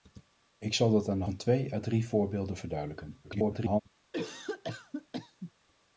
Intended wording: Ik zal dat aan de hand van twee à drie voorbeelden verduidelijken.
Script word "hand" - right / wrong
wrong